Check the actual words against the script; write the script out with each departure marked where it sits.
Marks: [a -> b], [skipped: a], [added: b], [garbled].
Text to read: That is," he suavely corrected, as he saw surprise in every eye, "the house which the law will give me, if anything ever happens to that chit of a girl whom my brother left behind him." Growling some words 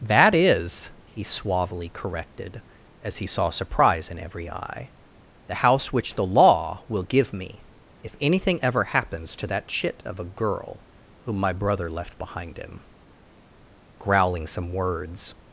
That is," he suavely corrected, as he saw surprise in every eye, "the house which the law will give me, if anything ever happens to that chit of a girl whom my brother left behind him." Growling some words